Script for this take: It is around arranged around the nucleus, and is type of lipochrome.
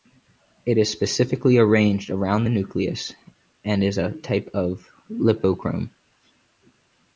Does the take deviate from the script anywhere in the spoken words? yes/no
yes